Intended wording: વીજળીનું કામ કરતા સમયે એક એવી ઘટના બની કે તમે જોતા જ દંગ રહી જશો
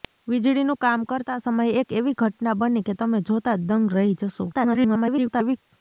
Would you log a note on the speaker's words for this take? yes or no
yes